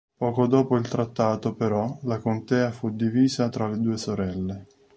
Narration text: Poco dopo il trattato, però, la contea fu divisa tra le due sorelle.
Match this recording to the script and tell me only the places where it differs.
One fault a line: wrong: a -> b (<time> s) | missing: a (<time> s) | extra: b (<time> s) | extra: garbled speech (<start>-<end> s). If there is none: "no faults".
no faults